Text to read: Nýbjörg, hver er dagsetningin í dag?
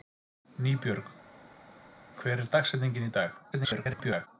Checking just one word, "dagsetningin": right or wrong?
right